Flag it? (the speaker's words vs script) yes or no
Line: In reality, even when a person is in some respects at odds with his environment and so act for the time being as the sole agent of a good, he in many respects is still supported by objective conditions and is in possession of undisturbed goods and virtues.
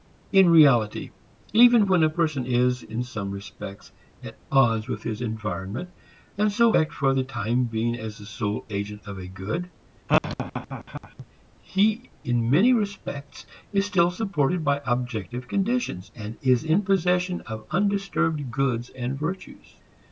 no